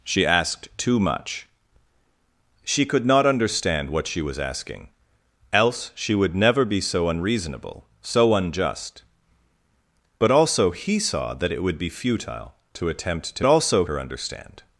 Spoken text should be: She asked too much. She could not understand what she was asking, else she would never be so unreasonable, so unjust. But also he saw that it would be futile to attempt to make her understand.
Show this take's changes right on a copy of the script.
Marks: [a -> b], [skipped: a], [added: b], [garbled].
She asked too much. She could not understand what she was asking, else she would never be so unreasonable, so unjust. But also he saw that it would be futile to attempt to [make -> also] her understand.